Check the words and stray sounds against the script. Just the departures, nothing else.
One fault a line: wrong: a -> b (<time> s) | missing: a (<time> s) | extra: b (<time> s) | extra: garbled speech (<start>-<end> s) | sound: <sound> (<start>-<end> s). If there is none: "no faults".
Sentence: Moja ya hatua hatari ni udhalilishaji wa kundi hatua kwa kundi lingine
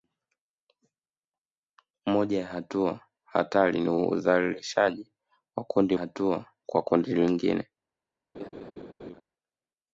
sound: laugh (8.3-9.2 s)